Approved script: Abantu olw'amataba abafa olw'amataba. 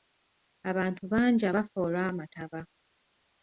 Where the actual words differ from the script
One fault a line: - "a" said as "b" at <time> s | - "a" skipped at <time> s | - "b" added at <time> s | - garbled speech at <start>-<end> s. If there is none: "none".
- "olw'amataba" said as "bangi" at 1.1 s